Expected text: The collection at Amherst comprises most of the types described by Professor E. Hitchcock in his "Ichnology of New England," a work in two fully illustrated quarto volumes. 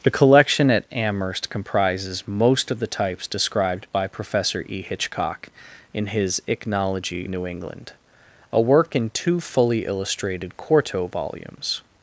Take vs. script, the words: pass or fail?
fail